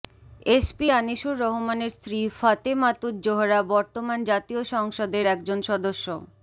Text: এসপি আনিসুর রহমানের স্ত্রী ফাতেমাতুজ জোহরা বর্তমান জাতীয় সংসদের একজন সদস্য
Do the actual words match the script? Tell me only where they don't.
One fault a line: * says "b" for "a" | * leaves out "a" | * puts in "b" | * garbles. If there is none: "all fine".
all fine